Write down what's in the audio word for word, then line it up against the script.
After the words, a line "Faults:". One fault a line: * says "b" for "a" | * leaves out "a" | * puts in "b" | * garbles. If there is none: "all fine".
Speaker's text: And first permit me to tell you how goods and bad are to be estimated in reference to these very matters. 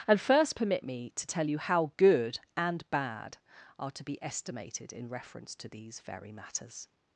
And first permit me to tell you how good and bad are to be estimated in reference to these very matters.
Faults:
* says "good" for "goods"